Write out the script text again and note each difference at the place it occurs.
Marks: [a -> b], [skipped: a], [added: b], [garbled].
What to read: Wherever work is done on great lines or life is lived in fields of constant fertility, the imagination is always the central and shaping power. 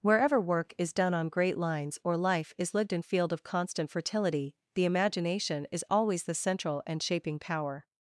Wherever work is done on great lines or life is lived in [fields -> field] of constant fertility, the imagination is always the central and shaping power.